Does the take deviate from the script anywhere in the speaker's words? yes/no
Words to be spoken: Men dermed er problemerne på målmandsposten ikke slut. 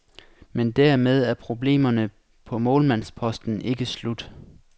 no